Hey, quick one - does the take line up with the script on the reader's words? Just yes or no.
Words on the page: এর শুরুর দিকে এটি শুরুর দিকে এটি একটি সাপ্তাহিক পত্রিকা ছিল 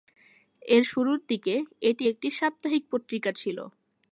no